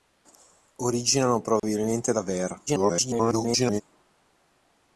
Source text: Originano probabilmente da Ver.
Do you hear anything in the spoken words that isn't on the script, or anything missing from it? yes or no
yes